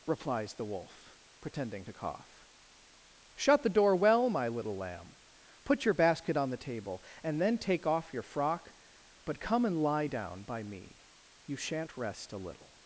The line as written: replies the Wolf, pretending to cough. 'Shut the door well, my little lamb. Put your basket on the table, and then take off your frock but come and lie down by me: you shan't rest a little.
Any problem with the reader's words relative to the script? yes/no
no